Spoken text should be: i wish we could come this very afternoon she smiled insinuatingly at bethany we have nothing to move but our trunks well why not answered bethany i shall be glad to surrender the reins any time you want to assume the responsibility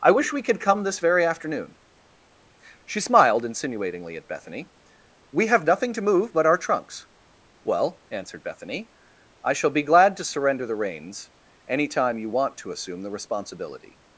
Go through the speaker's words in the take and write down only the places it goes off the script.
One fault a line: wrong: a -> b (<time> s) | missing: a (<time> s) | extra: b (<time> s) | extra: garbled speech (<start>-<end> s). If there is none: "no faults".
missing: why not (8.0 s)